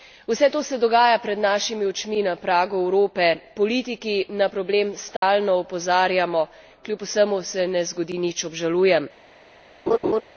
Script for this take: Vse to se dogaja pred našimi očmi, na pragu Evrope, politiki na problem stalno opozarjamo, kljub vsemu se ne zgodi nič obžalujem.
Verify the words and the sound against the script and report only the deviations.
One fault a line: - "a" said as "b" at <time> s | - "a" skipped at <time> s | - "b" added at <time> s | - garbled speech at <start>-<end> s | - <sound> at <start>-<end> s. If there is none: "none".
- dropout at 5.2-5.2 s
- laugh at 9.9-10.2 s